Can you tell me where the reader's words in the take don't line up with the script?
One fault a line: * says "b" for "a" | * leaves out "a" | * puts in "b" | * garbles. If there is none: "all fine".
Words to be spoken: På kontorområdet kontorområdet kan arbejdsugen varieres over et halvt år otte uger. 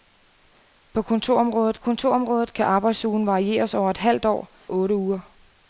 all fine